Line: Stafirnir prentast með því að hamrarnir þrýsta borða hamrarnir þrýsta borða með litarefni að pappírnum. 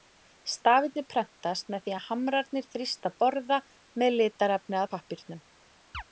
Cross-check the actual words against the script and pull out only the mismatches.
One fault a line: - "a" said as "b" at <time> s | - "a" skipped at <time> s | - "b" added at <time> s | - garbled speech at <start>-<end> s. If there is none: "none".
- "hamrarnir þrýsta borða" skipped at 3.6 s